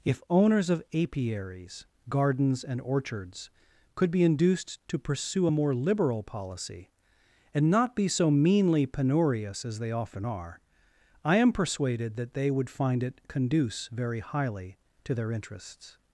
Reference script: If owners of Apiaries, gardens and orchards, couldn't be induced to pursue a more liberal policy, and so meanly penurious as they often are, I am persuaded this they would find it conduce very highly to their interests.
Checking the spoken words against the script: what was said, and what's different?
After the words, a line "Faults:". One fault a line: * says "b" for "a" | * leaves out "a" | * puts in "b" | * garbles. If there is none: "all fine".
If owners of Apiaries, gardens and orchards, could be induced to pursue a more liberal policy, and not be so meanly penurious as they often are, I am persuaded that they would find it conduce very highly to their interests.
Faults:
* says "could" for "couldn't"
* puts in "not be"
* says "that" for "this"